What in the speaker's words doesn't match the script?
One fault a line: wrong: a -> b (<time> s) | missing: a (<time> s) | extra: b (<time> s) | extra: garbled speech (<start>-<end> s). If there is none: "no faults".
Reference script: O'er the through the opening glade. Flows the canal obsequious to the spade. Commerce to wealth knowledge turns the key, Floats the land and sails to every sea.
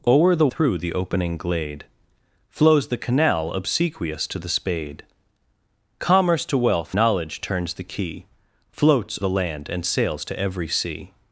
no faults